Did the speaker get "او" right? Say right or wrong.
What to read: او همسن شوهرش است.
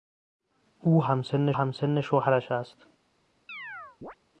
right